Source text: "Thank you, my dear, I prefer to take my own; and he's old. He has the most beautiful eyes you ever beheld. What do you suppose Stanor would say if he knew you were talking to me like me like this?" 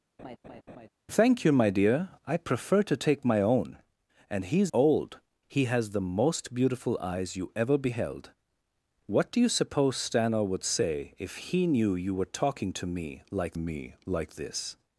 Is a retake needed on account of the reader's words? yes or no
no